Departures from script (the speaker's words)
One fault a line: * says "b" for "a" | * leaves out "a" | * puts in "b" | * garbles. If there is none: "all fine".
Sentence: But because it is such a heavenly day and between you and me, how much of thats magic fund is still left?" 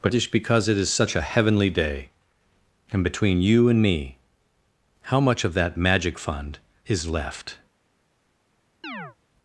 * puts in "just"
* says "that" for "thats"
* leaves out "still"